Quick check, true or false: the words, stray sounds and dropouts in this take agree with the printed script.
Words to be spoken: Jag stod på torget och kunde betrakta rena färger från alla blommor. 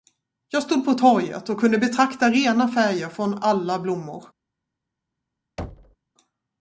false